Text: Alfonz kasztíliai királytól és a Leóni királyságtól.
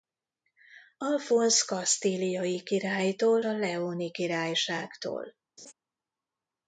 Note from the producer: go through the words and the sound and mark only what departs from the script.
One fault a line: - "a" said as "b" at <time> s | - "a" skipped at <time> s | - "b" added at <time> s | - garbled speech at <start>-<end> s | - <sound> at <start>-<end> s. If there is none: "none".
- "és" skipped at 3.4 s
- laugh at 5.6-5.7 s